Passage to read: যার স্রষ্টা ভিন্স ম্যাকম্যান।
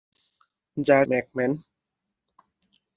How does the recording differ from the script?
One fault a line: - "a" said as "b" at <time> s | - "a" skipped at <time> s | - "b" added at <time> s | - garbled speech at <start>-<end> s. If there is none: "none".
- "স্রষ্টা ভিন্স" skipped at 1.1 s